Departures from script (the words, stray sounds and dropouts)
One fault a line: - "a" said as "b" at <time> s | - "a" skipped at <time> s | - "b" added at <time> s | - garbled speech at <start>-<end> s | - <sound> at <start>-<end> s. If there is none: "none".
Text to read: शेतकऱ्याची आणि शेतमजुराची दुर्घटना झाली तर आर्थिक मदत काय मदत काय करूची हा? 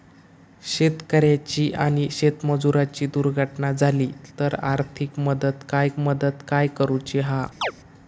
- chirp at 7.6-7.7 s